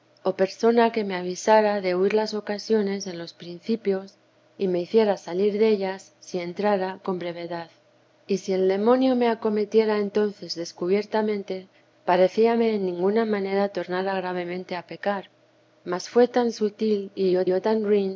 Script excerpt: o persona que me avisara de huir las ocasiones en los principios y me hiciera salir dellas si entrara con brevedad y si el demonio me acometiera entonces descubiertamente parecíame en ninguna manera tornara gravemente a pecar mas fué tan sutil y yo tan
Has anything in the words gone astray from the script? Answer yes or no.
yes